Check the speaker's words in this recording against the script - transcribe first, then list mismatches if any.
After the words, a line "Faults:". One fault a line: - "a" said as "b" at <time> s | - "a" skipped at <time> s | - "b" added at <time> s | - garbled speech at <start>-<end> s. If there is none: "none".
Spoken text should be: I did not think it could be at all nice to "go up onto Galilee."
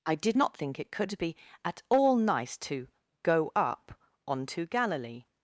I did not think it could be at all nice to "go up onto Galilee."
Faults:
none